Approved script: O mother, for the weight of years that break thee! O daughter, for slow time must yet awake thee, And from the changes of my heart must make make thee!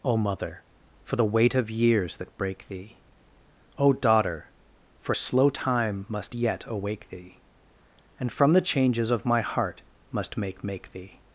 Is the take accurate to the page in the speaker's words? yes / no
yes